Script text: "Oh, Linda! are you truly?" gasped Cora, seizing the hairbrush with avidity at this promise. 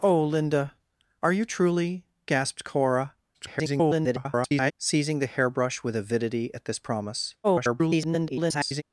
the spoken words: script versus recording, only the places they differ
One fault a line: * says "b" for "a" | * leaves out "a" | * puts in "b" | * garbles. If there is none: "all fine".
* garbles
* garbles